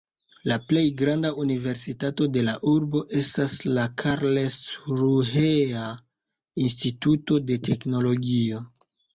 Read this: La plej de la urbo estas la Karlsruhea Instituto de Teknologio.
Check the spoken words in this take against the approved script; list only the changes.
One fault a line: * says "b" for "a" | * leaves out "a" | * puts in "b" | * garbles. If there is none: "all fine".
* puts in "granda universitato"